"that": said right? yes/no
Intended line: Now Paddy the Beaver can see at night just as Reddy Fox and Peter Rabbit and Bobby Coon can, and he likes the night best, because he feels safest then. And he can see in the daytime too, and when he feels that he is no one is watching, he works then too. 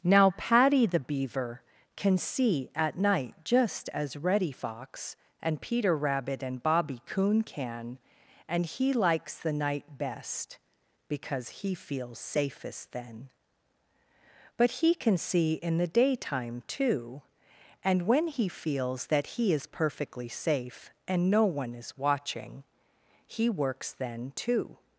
yes